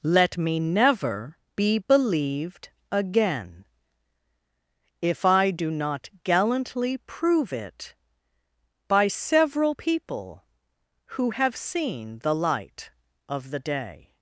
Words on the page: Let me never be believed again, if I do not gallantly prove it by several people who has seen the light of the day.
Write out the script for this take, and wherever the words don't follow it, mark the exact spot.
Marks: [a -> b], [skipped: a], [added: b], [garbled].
Let me never be believed again, if I do not gallantly prove it by several people who [has -> have] seen the light of the day.